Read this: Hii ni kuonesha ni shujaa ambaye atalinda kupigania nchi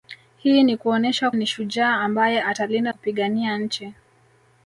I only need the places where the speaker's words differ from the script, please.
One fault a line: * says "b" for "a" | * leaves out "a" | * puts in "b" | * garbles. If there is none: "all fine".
all fine